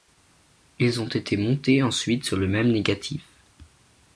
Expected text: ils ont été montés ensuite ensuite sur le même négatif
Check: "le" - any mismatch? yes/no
no